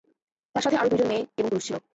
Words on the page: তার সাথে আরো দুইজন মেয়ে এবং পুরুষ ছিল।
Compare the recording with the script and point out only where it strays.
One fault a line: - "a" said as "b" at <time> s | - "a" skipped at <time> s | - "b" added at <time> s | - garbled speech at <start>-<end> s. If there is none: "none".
none